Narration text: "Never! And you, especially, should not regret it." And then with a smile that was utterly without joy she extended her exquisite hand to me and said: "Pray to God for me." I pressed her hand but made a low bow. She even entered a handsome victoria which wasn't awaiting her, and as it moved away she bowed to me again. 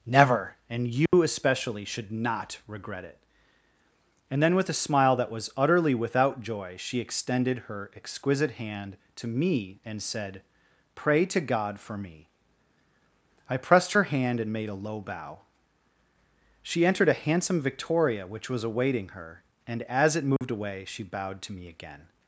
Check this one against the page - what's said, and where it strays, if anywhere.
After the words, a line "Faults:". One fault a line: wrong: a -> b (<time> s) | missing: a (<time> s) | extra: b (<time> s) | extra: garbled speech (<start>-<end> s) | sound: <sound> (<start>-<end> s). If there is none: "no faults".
"Never! And you, especially, should not regret it." And then with a smile that was utterly without joy she extended her exquisite hand to me and said: "Pray to God for me." I pressed her hand and made a low bow. She entered a handsome victoria which was awaiting her, and as it moved away she bowed to me again.
Faults:
sound: dropout (1.1-1.1 s)
wrong: but -> and (14.4 s)
missing: even (16.8 s)
wrong: wasn't -> was (18.5 s)
sound: dropout (20.4-20.4 s)